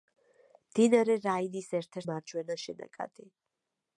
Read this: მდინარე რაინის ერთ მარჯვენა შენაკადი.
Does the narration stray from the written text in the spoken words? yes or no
no